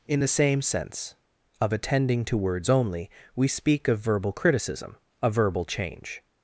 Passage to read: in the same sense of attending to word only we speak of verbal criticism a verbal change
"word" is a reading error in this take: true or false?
true